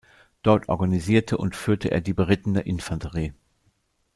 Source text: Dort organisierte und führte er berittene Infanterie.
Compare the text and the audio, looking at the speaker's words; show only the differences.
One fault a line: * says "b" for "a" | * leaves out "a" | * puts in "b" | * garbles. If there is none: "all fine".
* puts in "die"